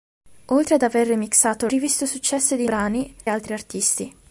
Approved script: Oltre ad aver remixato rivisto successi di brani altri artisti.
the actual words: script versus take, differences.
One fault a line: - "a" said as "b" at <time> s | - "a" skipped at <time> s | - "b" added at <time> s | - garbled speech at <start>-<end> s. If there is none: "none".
none